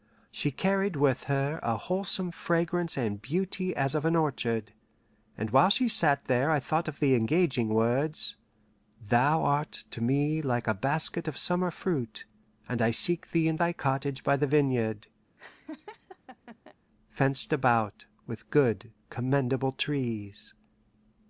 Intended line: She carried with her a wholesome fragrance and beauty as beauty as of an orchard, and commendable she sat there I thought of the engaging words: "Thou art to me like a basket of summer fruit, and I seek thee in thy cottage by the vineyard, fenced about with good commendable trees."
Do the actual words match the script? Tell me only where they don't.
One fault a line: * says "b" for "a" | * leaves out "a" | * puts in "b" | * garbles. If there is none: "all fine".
* leaves out "beauty as"
* says "while" for "commendable"